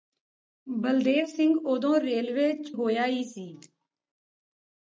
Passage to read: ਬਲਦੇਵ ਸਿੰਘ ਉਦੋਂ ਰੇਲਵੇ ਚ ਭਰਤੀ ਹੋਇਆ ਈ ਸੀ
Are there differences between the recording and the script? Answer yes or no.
yes